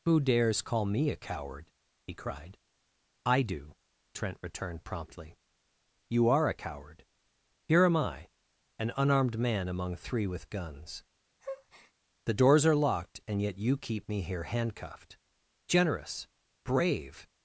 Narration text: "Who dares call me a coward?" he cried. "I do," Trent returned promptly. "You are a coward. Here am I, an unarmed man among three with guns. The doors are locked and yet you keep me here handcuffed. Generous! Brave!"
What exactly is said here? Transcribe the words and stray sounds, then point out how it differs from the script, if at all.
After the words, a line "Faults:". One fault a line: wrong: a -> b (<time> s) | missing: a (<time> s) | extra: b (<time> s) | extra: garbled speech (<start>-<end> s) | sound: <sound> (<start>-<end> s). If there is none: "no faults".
"Who dares call me a coward?" he cried. "I do," Trent returned promptly. "You are a coward. Here am I, an unarmed man among three with guns. The doors are locked and yet you keep me here handcuffed. Generous! Brave!"
Faults:
sound: breath (11.4-11.9 s)